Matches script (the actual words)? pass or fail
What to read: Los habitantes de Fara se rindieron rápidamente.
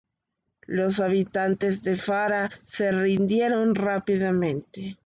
pass